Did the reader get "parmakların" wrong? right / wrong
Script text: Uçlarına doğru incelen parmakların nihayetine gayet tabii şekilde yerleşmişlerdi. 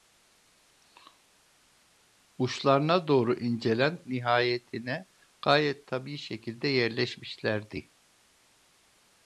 wrong